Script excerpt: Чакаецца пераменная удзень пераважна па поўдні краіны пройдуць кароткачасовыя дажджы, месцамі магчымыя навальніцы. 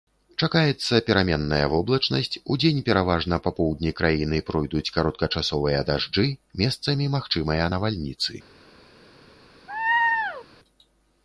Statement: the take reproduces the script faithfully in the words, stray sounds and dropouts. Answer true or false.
false